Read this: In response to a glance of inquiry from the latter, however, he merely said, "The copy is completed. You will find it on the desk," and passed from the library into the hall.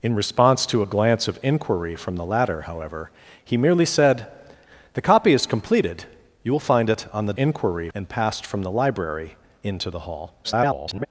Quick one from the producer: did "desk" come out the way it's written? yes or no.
no